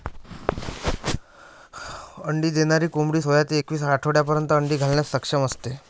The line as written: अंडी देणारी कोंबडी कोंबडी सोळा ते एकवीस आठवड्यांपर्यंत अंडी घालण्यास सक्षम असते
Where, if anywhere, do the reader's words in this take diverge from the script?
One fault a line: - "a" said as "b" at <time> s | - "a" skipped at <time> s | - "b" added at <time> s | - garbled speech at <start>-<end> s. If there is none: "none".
- "कोंबडी" skipped at 3.2 s